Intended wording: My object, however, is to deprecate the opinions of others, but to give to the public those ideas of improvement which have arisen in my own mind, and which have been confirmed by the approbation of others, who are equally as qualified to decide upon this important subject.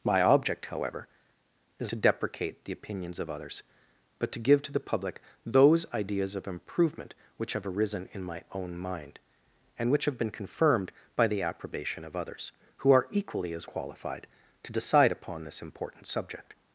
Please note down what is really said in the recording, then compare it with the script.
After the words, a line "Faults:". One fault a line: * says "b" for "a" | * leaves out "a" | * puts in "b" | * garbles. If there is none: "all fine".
My object, however, is to deprecate the opinions of others, but to give to the public those ideas of improvement which have arisen in my own mind, and which have been confirmed by the approbation of others, who are equally as qualified to decide upon this important subject.
Faults:
all fine